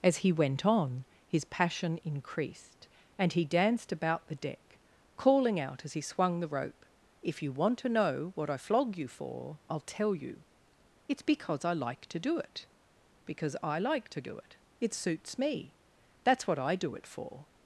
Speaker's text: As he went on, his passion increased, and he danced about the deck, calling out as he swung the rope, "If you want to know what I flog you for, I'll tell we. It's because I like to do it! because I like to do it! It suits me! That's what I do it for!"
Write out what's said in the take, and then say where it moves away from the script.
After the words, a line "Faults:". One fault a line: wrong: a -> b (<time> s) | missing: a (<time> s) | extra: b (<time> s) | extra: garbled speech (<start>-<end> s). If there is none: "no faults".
As he went on, his passion increased, and he danced about the deck, calling out as he swung the rope, "If you want to know what I flog you for, I'll tell you. It's because I like to do it! because I like to do it! It suits me! That's what I do it for!"
Faults:
wrong: we -> you (10.2 s)